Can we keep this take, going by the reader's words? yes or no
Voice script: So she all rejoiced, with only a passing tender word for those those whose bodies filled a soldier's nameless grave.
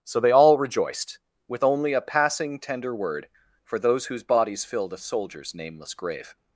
no